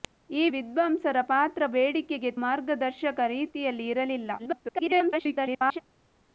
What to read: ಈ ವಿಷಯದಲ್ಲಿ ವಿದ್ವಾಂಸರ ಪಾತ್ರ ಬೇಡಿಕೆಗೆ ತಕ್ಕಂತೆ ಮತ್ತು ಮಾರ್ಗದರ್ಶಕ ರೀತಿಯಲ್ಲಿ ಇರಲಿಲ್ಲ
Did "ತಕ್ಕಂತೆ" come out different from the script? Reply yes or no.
yes